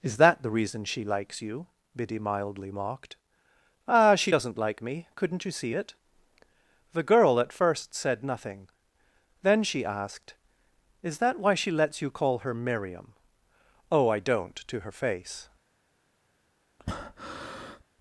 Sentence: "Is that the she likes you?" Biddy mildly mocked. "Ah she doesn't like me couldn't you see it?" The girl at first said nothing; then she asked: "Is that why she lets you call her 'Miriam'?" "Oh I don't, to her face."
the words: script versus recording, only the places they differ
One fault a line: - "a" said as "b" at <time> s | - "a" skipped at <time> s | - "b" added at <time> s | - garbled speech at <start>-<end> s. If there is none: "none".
- "reason" added at 0.5 s